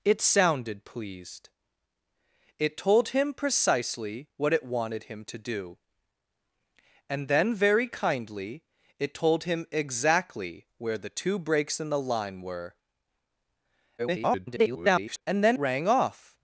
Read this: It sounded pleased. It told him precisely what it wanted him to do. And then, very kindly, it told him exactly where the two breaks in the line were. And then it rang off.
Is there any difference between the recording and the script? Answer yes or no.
yes